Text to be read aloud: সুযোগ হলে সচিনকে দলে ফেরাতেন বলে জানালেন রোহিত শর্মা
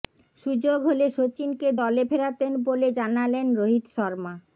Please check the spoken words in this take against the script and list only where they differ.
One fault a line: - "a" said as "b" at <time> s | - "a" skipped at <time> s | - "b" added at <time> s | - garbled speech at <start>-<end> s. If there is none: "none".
none